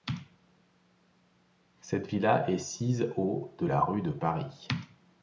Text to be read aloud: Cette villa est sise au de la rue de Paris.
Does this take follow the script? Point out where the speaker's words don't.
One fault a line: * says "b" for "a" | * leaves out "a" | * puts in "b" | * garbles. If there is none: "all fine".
all fine